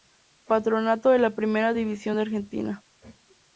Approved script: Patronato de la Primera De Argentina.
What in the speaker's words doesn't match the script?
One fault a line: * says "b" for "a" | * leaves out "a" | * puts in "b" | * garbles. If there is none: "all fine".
* puts in "División"